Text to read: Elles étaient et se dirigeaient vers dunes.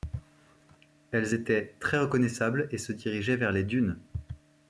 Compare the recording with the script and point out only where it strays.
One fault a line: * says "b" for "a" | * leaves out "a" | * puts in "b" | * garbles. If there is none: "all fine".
* puts in "très reconnaissables"
* puts in "les"